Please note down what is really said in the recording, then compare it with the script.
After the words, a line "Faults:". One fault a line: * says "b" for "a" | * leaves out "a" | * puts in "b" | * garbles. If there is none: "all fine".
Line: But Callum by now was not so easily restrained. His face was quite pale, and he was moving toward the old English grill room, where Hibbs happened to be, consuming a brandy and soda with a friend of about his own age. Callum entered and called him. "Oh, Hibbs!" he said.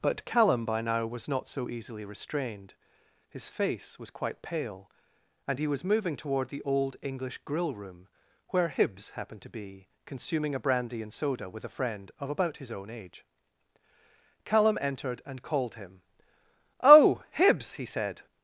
But Callum by now was not so easily restrained. His face was quite pale, and he was moving toward the old English grill room, where Hibbs happened to be, consuming a brandy and soda with a friend of about his own age. Callum entered and called him. "Oh, Hibbs!" he said.
Faults:
all fine